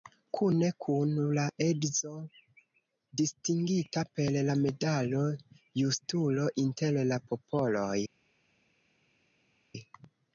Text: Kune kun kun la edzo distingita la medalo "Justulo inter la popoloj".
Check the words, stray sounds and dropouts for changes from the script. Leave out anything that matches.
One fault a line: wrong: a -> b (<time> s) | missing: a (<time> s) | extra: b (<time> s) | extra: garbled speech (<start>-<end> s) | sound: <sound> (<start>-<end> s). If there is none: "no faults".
missing: kun (1.1 s)
extra: per (4.2 s)